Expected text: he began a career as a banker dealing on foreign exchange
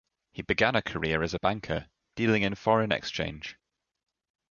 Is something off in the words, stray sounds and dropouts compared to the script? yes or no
yes